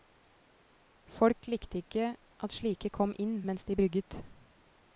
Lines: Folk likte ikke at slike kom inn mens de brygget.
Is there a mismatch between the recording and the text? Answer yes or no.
no